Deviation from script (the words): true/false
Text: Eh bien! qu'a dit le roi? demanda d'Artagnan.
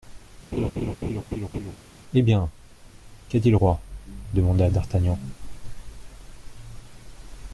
false